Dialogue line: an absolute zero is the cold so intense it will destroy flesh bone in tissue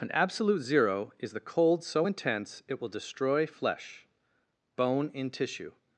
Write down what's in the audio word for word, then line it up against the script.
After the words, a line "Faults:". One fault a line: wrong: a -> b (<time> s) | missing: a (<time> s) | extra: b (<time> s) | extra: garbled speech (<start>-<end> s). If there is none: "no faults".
an absolute zero is the cold so intense it will destroy flesh bone in tissue
Faults:
no faults